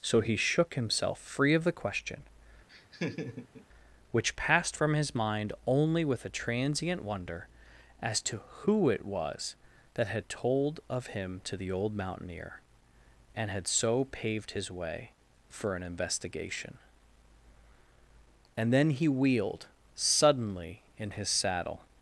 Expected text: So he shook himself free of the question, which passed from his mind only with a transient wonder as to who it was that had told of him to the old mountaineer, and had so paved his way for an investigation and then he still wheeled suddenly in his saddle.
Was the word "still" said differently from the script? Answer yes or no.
yes